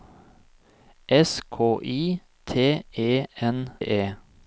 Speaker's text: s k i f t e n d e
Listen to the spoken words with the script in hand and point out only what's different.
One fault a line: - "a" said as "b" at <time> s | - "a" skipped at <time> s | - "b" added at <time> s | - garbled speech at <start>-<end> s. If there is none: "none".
- "f" skipped at 2.2 s
- "d" skipped at 3.7 s